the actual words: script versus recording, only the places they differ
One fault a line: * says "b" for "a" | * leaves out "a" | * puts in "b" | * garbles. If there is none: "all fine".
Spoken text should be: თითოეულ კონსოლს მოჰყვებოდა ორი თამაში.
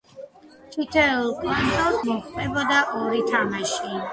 all fine